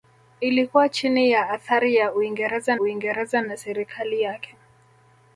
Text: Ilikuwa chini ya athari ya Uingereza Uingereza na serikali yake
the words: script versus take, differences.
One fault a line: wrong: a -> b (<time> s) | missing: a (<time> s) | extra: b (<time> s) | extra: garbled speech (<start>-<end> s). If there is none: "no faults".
no faults